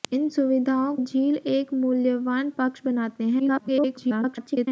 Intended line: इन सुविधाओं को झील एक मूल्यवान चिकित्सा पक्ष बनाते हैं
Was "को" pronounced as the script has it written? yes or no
no